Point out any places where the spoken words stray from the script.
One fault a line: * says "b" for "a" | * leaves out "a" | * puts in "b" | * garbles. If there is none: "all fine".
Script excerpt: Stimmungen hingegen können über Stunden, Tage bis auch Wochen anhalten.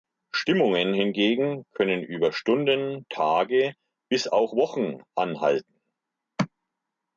all fine